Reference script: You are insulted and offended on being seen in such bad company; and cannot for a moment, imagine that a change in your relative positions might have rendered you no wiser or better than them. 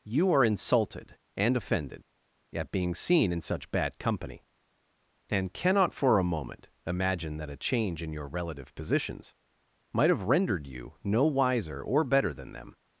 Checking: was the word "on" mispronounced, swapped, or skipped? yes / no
yes